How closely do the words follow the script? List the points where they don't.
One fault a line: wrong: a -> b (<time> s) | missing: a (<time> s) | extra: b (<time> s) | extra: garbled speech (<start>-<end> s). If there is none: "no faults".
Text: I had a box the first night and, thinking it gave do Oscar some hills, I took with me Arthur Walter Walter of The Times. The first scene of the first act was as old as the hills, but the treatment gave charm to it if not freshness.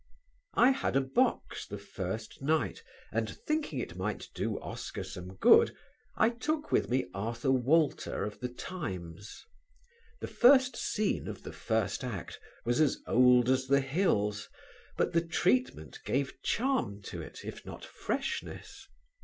wrong: gave -> might (4.0 s)
wrong: hills -> good (5.3 s)
missing: Walter (8.2 s)